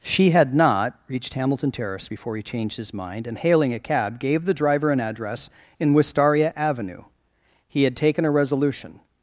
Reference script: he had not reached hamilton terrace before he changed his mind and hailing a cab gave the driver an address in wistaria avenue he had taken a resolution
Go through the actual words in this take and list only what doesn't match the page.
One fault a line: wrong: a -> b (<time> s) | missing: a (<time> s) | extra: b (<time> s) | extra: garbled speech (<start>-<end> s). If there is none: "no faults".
wrong: he -> she (0.0 s)